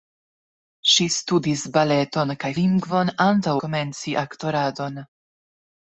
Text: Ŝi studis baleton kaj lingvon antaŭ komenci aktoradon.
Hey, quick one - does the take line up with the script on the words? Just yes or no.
yes